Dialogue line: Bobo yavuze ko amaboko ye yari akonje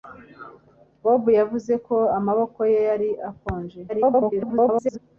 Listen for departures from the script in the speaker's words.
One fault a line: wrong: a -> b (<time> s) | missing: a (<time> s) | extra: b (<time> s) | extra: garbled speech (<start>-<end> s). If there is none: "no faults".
extra: garbled speech (3.9-5.0 s)